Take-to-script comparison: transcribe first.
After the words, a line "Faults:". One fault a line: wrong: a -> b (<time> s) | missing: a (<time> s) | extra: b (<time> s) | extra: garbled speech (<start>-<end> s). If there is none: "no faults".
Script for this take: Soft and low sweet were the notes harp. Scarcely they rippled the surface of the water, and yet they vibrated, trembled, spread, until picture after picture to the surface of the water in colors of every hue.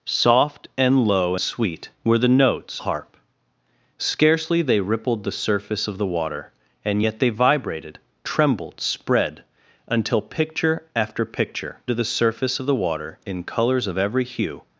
Soft and low sweet were the notes harp. Scarcely they rippled the surface of the water, and yet they vibrated, trembled, spread, until picture after picture to the surface of the water in colors of every hue.
Faults:
no faults